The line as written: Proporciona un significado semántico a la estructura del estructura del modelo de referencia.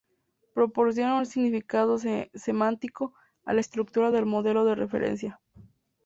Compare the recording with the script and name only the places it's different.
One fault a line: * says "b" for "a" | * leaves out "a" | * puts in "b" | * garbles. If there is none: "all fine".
* leaves out "estructura del"